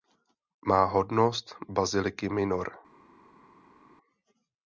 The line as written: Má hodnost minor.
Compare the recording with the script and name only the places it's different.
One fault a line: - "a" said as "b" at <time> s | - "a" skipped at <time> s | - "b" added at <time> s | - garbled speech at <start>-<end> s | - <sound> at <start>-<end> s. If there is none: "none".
- "baziliky" added at 1.7 s